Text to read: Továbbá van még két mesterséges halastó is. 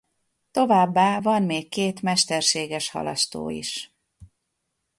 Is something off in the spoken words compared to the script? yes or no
no